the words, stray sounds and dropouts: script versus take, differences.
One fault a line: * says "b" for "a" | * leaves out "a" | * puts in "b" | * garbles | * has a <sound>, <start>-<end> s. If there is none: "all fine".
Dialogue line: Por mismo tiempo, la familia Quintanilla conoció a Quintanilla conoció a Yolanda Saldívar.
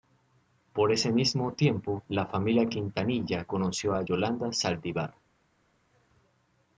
* puts in "ese"
* leaves out "Quintanilla conoció a"